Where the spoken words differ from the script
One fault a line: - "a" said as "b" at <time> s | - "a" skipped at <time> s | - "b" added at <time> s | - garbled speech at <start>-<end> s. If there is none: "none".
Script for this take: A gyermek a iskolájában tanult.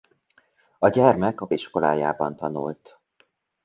none